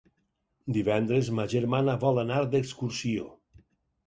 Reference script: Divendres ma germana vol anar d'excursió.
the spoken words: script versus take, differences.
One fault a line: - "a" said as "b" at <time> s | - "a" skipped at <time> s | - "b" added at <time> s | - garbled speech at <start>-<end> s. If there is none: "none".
none